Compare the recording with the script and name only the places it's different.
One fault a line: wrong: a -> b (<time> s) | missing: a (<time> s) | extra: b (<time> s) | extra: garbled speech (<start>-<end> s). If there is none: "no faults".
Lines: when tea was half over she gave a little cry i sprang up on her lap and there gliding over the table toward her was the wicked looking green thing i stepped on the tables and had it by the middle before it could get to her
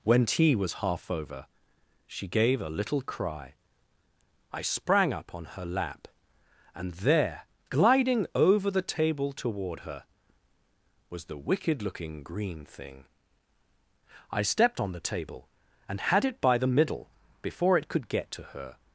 wrong: tables -> table (15.1 s)